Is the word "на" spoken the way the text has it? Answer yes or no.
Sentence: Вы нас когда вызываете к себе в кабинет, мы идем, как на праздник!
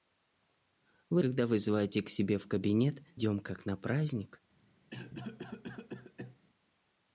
yes